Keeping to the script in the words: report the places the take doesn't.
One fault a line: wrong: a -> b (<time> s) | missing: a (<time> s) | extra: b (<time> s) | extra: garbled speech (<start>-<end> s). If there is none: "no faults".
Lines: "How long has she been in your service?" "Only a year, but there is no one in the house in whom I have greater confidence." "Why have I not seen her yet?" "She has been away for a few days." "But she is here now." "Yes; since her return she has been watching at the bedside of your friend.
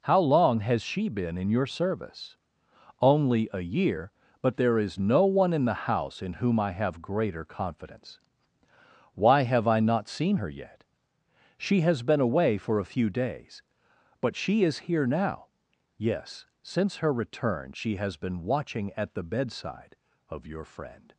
no faults